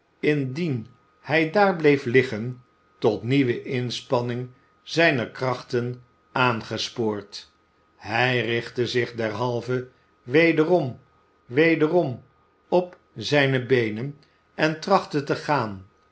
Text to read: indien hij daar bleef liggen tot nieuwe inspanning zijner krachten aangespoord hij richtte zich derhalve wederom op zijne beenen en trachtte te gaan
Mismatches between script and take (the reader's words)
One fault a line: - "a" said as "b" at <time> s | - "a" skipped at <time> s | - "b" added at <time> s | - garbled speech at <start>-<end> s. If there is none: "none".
- "wederom" added at 11.4 s